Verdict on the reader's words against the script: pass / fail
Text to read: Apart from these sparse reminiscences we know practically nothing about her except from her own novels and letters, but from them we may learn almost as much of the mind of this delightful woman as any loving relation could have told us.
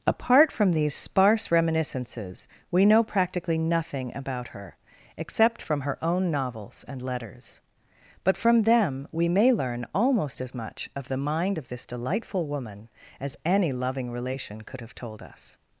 pass